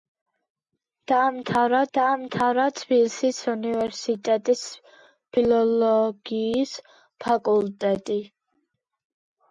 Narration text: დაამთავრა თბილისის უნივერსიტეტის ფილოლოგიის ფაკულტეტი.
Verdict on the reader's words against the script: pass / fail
fail